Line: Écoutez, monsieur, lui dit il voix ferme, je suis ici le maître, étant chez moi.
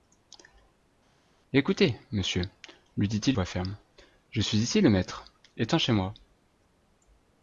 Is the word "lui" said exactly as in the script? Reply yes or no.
yes